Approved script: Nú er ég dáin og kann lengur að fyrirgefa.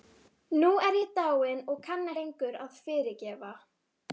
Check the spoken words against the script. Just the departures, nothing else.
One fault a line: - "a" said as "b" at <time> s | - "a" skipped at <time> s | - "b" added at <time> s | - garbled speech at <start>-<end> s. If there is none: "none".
none